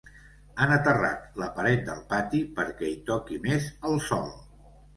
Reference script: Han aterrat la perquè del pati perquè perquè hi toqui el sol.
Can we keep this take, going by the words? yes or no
no